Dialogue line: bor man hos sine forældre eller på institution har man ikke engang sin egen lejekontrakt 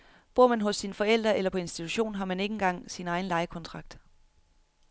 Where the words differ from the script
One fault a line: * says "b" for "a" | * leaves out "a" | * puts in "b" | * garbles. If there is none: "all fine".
all fine